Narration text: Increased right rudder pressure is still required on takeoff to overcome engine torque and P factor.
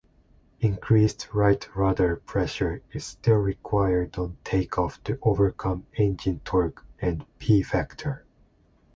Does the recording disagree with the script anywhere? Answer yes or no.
no